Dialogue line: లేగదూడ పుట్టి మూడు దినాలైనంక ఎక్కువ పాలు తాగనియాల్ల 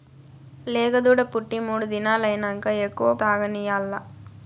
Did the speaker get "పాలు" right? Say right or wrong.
wrong